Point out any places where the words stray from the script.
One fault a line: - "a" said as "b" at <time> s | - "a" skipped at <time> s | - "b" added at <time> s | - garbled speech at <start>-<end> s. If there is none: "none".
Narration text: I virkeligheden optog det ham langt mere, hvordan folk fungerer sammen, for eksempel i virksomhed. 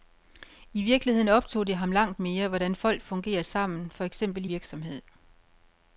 none